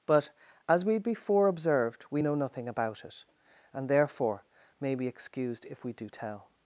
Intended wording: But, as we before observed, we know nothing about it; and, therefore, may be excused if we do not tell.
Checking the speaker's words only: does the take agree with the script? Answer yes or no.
no